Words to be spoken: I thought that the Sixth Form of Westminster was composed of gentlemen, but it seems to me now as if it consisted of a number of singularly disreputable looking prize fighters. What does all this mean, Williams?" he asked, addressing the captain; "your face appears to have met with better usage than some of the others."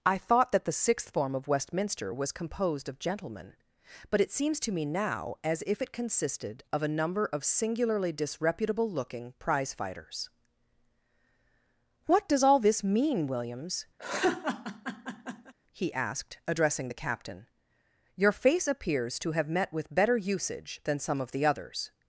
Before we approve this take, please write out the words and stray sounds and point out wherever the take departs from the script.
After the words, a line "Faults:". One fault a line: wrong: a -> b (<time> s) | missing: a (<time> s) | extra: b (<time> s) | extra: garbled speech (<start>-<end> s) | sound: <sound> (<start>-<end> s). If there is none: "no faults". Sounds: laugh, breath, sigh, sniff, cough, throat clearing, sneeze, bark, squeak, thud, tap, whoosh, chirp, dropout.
I thought that the Sixth Form of Westminster was composed of gentlemen, but it seems to me now as if it consisted of a number of singularly disreputable looking prize fighters. What does all this mean, Williams?" he asked, addressing the captain; "your face appears to have met with better usage than some of the others."
Faults:
sound: laugh (14.0-15.5 s)